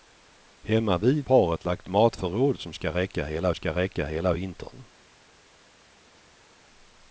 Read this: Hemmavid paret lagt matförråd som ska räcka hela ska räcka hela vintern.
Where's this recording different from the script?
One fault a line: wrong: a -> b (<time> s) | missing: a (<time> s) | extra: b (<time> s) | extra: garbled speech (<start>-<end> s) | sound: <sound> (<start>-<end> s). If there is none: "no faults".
no faults